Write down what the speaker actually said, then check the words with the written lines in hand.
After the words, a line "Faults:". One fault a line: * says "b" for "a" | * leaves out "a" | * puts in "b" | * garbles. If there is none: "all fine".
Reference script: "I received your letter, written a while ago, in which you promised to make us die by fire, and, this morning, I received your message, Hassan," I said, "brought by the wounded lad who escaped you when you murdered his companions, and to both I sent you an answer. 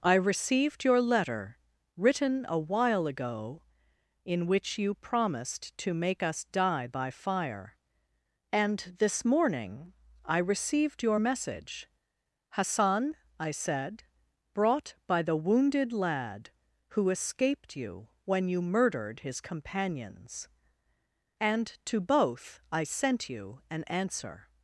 "I received your letter, written a while ago, in which you promised to make us die by fire, and, this morning, I received your message, Hassan," I said, "brought by the wounded lad who escaped you when you murdered his companions, and to both I sent you an answer.
Faults:
all fine